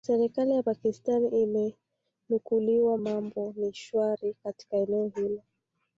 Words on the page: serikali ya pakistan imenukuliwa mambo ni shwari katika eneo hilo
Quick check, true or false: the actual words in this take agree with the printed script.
true